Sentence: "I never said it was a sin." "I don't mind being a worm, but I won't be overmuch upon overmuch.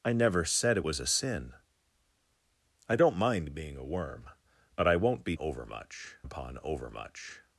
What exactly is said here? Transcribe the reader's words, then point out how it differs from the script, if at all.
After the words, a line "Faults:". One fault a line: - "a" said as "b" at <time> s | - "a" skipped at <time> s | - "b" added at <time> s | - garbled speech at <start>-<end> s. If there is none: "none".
"I never said it was a sin." "I don't mind being a worm, but I won't be overmuch upon overmuch.
Faults:
none